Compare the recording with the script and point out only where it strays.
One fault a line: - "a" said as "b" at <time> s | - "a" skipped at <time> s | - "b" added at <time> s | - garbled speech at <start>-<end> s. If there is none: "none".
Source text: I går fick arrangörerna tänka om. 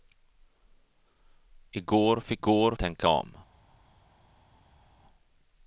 - "arrangörerna" said as "går" at 2.4 s